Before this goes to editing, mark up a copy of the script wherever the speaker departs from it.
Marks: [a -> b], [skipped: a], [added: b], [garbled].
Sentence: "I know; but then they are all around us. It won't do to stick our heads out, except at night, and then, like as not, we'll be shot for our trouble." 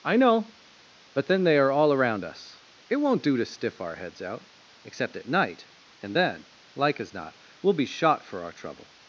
"I know; but then they are all around us. It won't do to [stick -> stiff] our heads out, except at night, and then, like as not, we'll be shot for our trouble."